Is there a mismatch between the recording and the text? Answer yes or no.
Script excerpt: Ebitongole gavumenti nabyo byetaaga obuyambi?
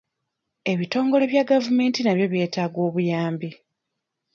yes